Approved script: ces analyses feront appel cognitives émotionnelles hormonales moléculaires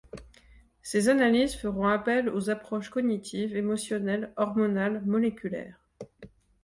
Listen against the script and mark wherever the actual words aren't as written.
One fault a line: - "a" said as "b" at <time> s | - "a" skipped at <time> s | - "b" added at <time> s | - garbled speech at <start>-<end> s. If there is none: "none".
- "aux approches" added at 2.3 s